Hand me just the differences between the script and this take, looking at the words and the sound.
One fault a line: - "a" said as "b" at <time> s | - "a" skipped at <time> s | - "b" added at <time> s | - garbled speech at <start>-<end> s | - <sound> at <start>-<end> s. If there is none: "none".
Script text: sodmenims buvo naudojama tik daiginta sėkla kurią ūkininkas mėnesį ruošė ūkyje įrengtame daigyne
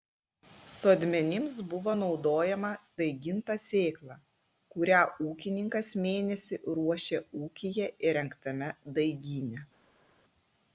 - "tik" skipped at 2.7 s